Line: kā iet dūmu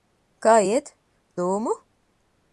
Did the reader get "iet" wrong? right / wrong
right